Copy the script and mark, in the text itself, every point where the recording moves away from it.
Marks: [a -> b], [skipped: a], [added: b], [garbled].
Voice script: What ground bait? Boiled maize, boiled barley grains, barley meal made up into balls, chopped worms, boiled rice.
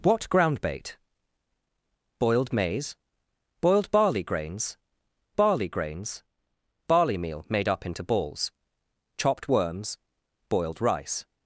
What ground bait? Boiled maize, boiled barley grains, barley [added: grains barley] meal made up into balls, chopped worms, boiled rice.